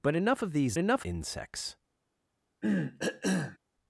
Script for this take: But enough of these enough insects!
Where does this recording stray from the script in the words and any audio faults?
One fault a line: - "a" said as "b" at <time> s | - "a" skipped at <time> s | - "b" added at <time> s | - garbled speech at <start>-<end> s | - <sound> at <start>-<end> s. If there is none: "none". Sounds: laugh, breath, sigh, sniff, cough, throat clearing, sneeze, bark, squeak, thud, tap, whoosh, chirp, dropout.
- cough at 2.6-3.6 s